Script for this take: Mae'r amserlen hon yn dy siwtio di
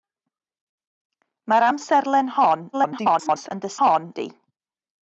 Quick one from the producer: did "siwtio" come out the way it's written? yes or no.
no